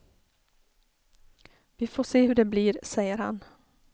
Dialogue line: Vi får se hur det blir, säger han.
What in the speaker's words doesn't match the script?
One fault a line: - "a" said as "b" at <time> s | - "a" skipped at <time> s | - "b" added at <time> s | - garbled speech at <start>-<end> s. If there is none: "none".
none